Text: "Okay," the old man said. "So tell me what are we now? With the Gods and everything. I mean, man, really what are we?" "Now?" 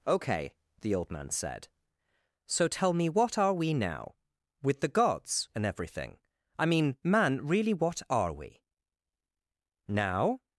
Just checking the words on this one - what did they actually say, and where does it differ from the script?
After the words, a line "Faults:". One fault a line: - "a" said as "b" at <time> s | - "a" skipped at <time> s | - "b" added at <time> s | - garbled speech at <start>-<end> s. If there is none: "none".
"Okay," the old man said. "So tell me what are we now? With the Gods and everything. I mean, man, really what are we?" "Now?"
Faults:
none